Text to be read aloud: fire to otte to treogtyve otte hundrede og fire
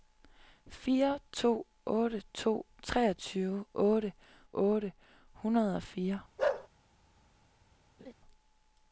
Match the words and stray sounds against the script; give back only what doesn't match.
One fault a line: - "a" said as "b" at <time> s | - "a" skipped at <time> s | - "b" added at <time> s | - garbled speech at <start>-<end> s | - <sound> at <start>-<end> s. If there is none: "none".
- "otte" added at 4.5 s
- bark at 6.4-6.7 s
- laugh at 8.0-8.1 s